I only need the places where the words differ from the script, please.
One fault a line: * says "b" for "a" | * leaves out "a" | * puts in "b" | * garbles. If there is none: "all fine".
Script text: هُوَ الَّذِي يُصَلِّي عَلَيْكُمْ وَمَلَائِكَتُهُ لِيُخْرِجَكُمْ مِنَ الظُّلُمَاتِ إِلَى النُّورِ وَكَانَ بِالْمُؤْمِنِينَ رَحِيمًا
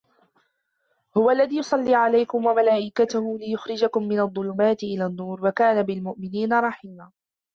all fine